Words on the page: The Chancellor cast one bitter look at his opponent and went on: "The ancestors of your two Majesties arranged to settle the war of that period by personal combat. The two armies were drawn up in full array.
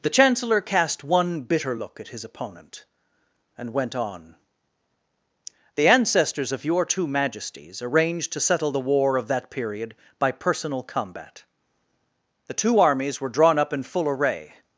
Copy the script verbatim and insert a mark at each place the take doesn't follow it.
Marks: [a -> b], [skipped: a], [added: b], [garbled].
The Chancellor cast one bitter look at his opponent and went on: "The ancestors of your two Majesties arranged to settle the war of that period by personal combat. The two armies were drawn up in full array.